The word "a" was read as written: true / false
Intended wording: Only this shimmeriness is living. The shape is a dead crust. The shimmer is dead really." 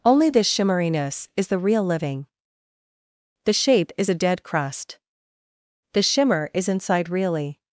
true